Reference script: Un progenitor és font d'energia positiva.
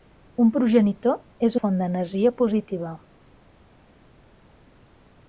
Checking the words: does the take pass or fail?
pass